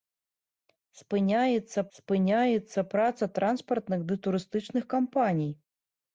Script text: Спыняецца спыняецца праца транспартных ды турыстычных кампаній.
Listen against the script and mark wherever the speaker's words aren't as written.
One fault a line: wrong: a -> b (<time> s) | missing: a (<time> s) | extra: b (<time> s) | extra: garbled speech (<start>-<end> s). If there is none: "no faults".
no faults